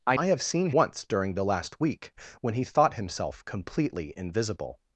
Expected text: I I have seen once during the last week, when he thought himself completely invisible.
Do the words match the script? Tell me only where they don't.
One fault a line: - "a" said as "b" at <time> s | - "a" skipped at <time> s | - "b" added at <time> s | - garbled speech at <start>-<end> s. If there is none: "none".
none